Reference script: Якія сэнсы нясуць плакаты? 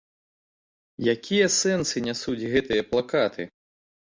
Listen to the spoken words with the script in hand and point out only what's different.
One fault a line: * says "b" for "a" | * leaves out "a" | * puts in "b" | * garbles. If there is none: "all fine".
* puts in "гэтыя"